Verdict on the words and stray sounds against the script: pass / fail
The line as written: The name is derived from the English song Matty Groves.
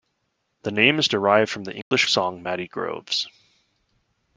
fail